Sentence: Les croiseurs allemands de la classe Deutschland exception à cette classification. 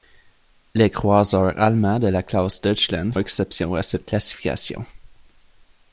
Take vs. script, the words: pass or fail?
pass